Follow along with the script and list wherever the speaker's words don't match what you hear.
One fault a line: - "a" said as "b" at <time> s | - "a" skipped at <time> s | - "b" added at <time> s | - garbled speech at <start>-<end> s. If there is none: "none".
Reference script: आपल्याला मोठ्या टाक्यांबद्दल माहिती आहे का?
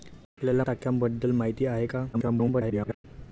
- "मोठ्या" skipped at 0.6 s
- garbled speech at 2.1-3.1 s